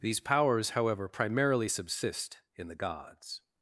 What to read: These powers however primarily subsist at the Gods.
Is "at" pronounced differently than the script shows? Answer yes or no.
yes